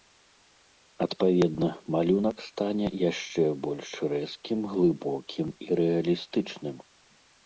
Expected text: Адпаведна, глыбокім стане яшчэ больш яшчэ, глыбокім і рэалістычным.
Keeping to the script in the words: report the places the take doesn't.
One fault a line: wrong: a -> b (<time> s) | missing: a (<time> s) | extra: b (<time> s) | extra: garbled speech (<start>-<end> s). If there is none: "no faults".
wrong: глыбокім -> малюнак (1.9 s)
wrong: яшчэ -> рэзкім (4.1 s)